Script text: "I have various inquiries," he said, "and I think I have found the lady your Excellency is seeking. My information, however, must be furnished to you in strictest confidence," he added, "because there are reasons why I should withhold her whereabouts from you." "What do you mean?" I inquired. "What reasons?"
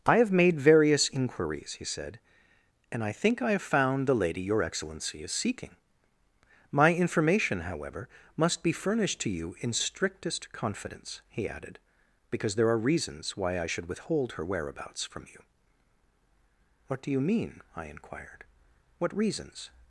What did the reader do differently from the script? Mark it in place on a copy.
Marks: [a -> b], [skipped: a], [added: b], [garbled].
"I have [added: made] various inquiries," he said, "and I think I have found the lady your Excellency is seeking. My information, however, must be furnished to you in strictest confidence," he added, "because there are reasons why I should withhold her whereabouts from you." "What do you mean?" I inquired. "What reasons?"